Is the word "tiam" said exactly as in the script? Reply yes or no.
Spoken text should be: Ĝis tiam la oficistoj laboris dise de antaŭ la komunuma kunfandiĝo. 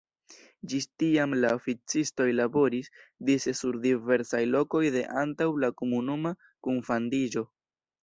yes